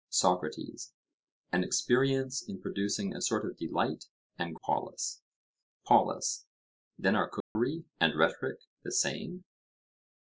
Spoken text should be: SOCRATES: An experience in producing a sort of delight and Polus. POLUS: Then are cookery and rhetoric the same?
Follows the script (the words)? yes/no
yes